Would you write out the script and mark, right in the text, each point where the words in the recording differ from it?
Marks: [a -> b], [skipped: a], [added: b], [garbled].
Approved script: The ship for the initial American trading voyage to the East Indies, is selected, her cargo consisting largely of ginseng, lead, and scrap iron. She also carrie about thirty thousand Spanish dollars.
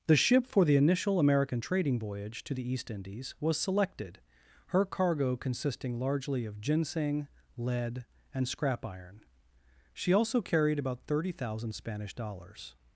The ship for the initial American trading voyage to the East Indies, [is -> was] selected, her cargo consisting largely of ginseng, lead, and scrap iron. She also [carrie -> carried] about thirty thousand Spanish dollars.